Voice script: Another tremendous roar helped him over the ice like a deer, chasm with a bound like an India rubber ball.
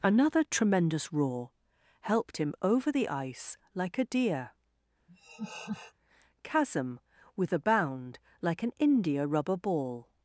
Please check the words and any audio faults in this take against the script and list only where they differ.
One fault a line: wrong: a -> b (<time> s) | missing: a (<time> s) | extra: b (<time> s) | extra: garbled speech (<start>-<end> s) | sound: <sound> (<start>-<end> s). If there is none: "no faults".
sound: laugh (5.1-5.9 s)